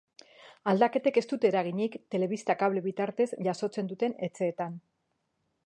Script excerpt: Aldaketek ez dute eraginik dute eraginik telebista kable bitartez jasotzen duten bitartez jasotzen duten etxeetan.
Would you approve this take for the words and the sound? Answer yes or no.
no